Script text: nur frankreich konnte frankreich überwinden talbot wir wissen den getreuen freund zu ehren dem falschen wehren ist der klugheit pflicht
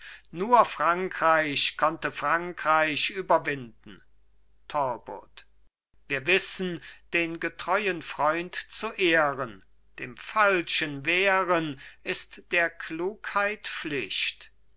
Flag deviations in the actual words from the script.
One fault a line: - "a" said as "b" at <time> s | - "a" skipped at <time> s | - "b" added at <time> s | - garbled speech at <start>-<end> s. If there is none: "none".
none